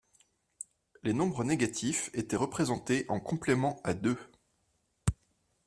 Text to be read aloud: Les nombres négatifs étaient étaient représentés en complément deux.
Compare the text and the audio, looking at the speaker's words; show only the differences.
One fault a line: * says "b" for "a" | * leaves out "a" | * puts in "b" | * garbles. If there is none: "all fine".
* leaves out "étaient"
* puts in "à"